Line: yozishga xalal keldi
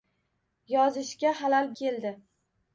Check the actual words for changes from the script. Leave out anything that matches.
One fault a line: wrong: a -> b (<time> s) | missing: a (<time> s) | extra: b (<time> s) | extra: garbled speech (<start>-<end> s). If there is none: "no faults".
no faults